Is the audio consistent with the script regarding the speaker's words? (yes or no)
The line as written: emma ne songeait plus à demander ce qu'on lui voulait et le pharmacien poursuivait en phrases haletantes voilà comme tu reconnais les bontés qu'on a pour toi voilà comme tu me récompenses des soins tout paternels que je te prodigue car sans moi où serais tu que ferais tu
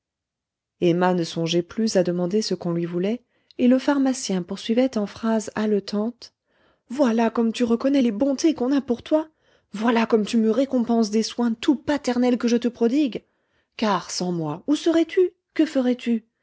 yes